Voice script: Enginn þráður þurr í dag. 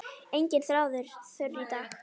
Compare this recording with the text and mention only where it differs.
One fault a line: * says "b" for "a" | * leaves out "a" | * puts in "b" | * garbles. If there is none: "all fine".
all fine